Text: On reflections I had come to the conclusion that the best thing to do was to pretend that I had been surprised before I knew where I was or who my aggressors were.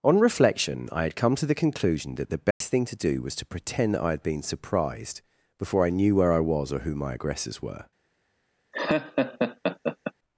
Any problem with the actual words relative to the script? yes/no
yes